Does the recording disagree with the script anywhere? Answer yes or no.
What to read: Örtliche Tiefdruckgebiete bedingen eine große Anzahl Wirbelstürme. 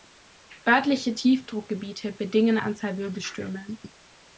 yes